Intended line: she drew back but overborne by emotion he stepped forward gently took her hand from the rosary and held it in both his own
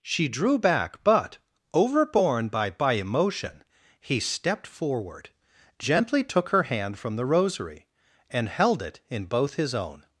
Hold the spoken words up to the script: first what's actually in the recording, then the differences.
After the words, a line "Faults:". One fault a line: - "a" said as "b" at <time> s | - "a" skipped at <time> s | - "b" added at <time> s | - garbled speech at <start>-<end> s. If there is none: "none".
she drew back but overborne by by emotion he stepped forward gently took her hand from the rosary and held it in both his own
Faults:
- "by" added at 2.7 s